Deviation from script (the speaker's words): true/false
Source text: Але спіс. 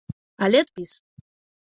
false